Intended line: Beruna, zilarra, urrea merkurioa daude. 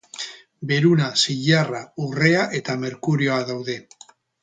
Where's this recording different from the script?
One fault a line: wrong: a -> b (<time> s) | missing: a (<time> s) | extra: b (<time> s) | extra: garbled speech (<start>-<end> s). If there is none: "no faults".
extra: eta (2.6 s)